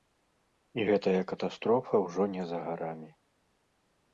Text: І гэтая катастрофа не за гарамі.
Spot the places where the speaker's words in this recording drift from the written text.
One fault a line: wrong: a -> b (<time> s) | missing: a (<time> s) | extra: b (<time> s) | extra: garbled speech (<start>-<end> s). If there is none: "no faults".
extra: ўжо (2.0 s)